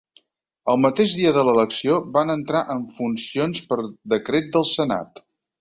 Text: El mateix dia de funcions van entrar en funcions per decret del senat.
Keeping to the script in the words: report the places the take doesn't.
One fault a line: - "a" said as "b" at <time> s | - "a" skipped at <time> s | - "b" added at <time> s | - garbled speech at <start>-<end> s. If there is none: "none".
- "funcions" said as "l'elecció" at 1.5 s